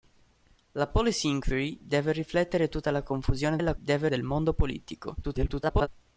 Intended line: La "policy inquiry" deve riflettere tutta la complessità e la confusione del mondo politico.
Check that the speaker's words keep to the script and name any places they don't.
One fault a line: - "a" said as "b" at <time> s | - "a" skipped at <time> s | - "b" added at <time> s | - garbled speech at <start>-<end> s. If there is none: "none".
- "complessità" said as "confusione" at 3.0 s
- "confusione" said as "deve" at 3.8 s
- garbled speech at 5.2-5.9 s